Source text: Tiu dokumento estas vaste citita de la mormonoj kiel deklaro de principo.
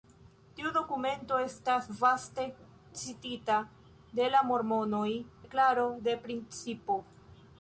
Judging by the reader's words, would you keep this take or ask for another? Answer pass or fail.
fail